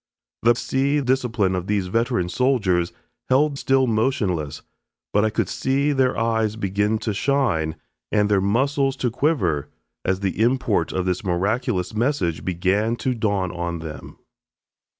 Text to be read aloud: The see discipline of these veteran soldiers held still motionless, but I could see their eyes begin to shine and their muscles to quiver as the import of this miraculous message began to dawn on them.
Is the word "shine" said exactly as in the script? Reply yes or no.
yes